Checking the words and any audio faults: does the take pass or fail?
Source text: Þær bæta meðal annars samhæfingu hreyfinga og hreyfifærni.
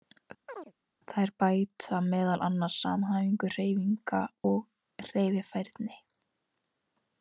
fail